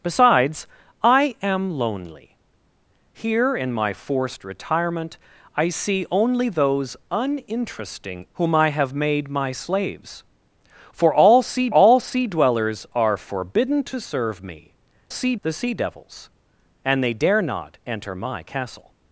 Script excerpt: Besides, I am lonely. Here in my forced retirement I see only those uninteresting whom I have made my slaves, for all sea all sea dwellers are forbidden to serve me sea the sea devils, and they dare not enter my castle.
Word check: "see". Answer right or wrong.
right